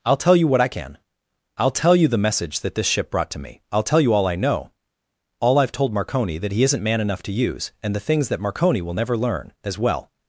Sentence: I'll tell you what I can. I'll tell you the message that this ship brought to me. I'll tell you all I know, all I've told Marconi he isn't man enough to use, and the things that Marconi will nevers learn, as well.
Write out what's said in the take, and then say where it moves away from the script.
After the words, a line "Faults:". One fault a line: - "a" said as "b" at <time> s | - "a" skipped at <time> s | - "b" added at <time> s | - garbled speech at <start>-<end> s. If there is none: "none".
I'll tell you what I can. I'll tell you the message that this ship brought to me. I'll tell you all I know, all I've told Marconi that he isn't man enough to use, and the things that Marconi will never learn, as well.
Faults:
- "that" added at 6.4 s
- "nevers" said as "never" at 8.9 s